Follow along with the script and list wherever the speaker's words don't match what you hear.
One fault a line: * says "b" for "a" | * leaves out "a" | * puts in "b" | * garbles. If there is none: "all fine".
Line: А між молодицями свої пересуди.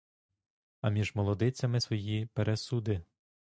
all fine